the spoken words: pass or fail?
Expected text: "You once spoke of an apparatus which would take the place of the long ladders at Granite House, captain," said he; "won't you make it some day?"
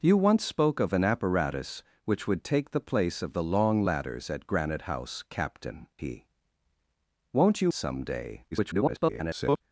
fail